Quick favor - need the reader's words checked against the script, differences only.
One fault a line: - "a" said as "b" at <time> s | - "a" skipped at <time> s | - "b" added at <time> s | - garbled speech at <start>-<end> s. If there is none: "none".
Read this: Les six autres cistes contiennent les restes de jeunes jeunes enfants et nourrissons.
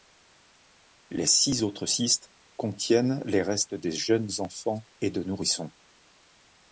- "jeunes" skipped at 4.3 s
- "de" added at 5.1 s